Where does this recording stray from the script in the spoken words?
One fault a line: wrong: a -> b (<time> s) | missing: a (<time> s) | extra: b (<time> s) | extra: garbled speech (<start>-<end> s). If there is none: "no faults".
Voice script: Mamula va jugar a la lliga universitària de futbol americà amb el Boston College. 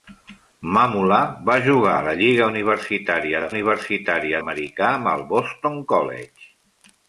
wrong: futbol -> universitària (3.5 s)